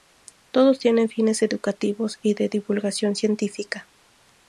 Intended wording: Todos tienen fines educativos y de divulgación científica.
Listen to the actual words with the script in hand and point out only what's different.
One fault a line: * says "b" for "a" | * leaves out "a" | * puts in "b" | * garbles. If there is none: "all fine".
all fine